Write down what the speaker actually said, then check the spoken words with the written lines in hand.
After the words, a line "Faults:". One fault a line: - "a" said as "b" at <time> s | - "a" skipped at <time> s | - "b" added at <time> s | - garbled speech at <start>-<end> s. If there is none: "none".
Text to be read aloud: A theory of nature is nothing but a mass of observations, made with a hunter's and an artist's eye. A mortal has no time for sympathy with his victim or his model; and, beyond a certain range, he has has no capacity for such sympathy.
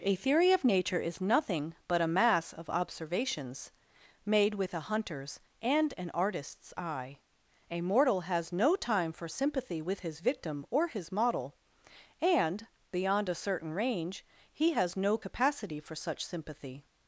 A theory of nature is nothing but a mass of observations, made with a hunter's and an artist's eye. A mortal has no time for sympathy with his victim or his model; and, beyond a certain range, he has no capacity for such sympathy.
Faults:
- "has" skipped at 15.0 s